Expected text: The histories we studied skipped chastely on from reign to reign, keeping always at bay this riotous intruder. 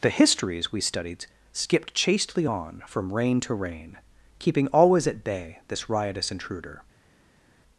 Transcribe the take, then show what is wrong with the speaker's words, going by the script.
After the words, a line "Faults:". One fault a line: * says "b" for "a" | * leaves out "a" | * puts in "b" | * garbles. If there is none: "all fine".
The histories we studied skipped chastely on from reign to reign, keeping always at bay this riotous intruder.
Faults:
all fine